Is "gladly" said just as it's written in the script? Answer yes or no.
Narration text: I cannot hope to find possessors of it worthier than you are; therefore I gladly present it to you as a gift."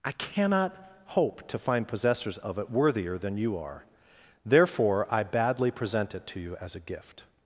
no